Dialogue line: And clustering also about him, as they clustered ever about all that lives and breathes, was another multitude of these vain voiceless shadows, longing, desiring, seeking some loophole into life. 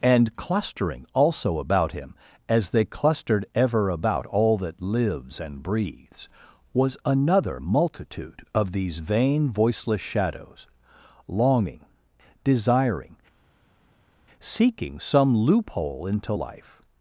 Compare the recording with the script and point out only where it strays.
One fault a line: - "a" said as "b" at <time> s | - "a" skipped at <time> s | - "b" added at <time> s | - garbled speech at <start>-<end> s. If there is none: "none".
none